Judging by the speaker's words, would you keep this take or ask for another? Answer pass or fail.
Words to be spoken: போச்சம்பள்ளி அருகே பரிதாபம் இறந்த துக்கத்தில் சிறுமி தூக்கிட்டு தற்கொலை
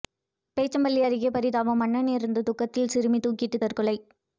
fail